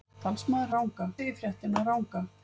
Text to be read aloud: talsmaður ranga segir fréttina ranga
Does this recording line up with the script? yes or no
yes